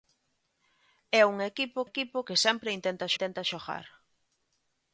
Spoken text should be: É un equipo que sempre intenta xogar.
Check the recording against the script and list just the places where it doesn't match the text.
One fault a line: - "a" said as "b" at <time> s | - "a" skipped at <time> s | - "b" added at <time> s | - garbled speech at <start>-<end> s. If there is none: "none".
- "equipo" added at 1.9 s
- "intenta" added at 3.1 s